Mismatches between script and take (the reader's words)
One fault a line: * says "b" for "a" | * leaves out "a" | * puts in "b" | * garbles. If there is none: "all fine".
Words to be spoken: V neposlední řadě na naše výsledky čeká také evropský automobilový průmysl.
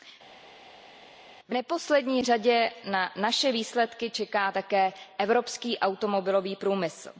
all fine